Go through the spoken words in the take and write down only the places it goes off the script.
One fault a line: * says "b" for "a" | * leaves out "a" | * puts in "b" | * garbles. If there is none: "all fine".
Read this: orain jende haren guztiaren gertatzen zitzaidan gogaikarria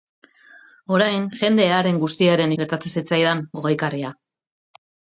all fine